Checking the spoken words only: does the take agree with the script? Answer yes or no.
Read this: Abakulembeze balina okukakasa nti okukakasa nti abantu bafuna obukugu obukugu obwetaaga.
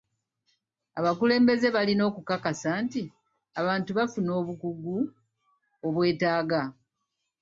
no